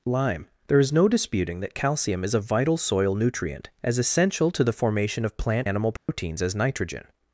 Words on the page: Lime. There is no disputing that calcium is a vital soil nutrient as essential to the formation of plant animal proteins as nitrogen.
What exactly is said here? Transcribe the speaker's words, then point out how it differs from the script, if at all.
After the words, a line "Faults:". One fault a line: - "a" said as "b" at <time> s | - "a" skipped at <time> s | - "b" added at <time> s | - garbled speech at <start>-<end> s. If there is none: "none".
Lime. There is no disputing that calcium is a vital soil nutrient as essential to the formation of plant animal proteins as nitrogen.
Faults:
none